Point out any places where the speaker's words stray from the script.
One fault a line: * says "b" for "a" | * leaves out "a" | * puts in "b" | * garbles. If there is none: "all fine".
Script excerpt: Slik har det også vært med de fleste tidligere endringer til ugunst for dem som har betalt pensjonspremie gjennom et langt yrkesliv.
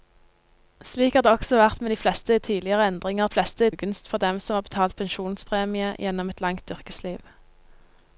* says "fleste" for "til"